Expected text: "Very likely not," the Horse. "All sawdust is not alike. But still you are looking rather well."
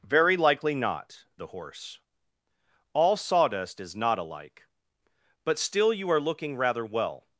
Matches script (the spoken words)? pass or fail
pass